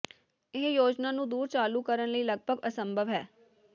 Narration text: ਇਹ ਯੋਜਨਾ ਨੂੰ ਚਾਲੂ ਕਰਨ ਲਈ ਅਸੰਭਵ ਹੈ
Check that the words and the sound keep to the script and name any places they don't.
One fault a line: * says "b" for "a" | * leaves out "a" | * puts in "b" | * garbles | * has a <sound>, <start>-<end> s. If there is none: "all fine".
* puts in "ਦੂਰ"
* puts in "ਲਗਭਗ"